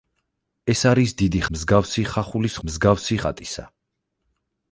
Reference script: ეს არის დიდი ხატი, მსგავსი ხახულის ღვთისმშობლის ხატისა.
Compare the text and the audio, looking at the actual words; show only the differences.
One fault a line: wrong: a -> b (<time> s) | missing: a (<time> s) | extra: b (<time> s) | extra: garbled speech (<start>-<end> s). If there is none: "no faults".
missing: ხატი (1.4 s)
wrong: ღვთისმშობლის -> მსგავსი (2.7 s)